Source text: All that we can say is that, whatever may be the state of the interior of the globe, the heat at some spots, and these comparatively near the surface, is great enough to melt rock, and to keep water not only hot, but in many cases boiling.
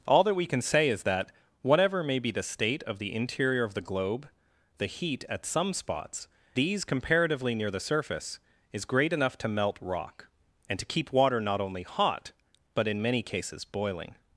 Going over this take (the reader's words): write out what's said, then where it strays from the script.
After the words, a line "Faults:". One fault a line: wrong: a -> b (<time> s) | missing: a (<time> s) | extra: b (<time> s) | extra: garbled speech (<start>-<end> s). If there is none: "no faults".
All that we can say is that, whatever may be the state of the interior of the globe, the heat at some spots, these comparatively near the surface, is great enough to melt rock, and to keep water not only hot, but in many cases boiling.
Faults:
missing: and (6.3 s)